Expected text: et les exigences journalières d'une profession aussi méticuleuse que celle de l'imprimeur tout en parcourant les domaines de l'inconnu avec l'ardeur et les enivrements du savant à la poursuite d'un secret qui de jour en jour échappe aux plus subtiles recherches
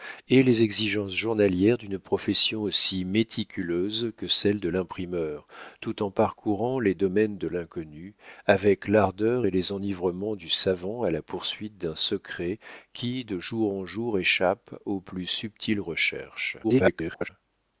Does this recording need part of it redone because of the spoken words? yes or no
yes